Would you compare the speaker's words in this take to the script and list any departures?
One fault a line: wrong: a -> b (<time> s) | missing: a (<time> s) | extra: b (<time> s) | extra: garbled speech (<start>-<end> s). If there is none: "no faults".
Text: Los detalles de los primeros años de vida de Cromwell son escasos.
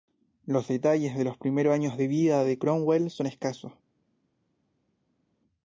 no faults